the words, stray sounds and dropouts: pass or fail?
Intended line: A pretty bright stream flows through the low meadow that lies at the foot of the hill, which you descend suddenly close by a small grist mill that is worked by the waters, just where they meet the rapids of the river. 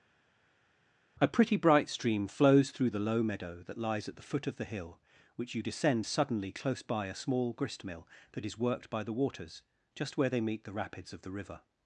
pass